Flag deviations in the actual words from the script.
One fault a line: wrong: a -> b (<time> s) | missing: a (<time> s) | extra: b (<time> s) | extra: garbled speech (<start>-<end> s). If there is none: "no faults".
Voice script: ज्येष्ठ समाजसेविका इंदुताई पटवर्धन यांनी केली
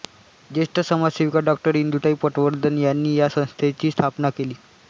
extra: डॉ (1.4 s)
extra: या संस्थेची स्थापना (3.1 s)